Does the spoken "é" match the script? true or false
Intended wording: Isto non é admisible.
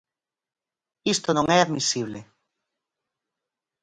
true